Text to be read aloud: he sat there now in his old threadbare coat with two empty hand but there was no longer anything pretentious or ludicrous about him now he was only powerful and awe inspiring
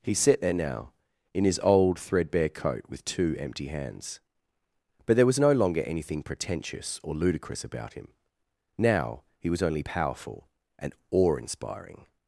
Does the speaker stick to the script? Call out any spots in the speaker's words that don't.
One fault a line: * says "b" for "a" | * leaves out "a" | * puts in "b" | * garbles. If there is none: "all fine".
* says "hands" for "hand"